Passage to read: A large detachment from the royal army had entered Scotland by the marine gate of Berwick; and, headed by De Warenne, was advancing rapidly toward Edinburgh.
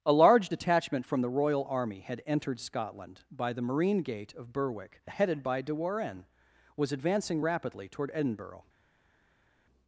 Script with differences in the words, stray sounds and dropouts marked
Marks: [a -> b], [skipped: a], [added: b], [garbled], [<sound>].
A large detachment from the royal army had entered Scotland by the marine gate of Berwick; [skipped: and,] headed by De Warenne, was advancing rapidly toward Edinburgh.